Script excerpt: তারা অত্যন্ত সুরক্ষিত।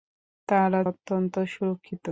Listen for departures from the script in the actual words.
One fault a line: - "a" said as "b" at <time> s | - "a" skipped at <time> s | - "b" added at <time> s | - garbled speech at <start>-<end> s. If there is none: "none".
none